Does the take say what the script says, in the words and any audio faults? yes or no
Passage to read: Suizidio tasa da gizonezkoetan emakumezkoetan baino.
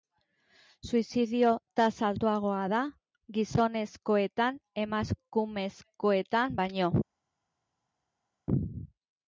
no